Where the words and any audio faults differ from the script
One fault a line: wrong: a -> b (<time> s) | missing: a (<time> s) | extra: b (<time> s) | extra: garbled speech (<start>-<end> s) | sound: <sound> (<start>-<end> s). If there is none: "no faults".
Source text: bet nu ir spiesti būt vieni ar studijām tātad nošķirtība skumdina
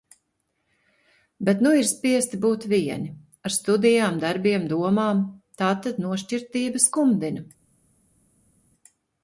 extra: darbiem domām (4.2 s)